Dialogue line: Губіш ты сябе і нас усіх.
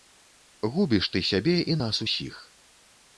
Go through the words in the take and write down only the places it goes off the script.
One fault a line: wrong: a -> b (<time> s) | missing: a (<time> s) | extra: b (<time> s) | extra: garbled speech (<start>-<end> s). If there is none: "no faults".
no faults